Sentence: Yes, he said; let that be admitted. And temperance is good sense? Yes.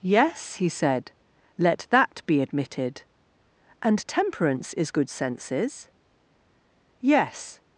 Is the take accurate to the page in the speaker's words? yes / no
no